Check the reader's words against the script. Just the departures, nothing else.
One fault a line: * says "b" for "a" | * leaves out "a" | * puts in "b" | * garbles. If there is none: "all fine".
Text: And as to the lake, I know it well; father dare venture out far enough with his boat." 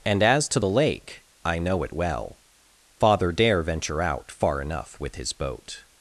all fine